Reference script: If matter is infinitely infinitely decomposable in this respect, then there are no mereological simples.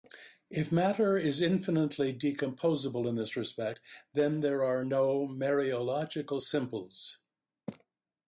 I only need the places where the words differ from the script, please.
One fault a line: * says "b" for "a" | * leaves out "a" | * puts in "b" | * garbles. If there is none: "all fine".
* leaves out "infinitely"